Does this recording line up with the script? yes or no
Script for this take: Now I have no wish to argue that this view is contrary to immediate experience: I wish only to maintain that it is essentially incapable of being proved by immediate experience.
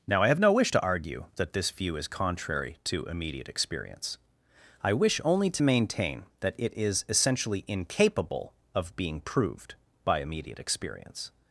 yes